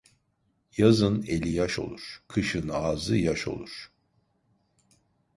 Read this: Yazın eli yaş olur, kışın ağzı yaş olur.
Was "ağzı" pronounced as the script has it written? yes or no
yes